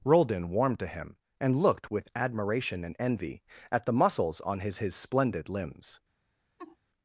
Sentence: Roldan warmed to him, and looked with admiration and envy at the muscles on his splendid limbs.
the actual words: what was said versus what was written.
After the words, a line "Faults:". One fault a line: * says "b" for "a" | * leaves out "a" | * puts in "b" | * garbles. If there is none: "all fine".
Roldan warmed to him, and looked with admiration and envy at the muscles on his his splendid limbs.
Faults:
* puts in "his"